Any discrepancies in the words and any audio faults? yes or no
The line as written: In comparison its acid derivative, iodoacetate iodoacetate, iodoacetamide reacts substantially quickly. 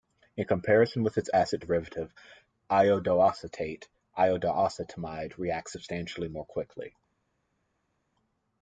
yes